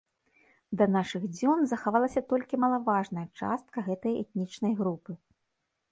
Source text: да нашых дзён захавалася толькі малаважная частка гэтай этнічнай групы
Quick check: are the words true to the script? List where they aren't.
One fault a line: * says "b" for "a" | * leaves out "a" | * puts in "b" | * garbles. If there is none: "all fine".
all fine